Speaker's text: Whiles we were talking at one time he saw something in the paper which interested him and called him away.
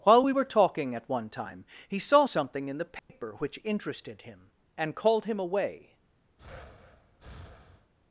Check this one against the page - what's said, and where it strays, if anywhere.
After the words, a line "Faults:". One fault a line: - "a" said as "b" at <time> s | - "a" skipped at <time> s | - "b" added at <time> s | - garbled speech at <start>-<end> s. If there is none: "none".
While we were talking at one time he saw something in the paper which interested him and called him away.
Faults:
- "Whiles" said as "While" at 0.0 s